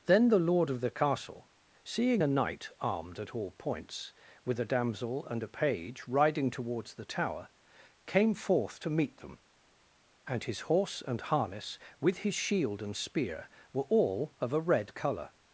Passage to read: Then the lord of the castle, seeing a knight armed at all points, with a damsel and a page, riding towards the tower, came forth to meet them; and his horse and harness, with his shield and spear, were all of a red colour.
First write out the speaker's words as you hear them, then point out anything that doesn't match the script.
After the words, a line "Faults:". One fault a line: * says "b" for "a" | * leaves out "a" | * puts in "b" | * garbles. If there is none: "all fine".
Then the lord of the castle, seeing a knight armed at all points, with a damsel and a page, riding towards the tower, came forth to meet them; and his horse and harness, with his shield and spear, were all of a red colour.
Faults:
all fine